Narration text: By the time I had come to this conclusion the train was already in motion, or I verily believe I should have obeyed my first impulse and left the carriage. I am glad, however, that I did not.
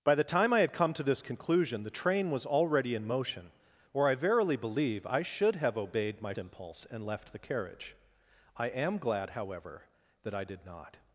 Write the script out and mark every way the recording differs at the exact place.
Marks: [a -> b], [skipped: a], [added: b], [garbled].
By the time I had come to this conclusion the train was already in motion, or I verily believe I should have obeyed my [skipped: first] impulse and left the carriage. I am glad, however, that I did not.